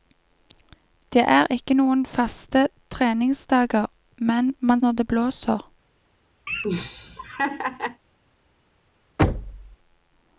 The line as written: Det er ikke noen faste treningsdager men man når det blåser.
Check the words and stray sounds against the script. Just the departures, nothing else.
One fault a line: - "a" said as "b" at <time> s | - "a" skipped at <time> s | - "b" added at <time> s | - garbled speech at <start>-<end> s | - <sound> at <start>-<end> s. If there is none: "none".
- laugh at 6.5-8.0 s
- thud at 9.2-9.8 s